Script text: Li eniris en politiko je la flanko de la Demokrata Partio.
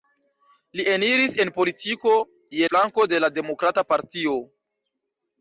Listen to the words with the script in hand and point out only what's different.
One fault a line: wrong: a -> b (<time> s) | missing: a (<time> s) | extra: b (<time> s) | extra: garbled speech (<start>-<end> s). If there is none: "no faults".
missing: la (2.7 s)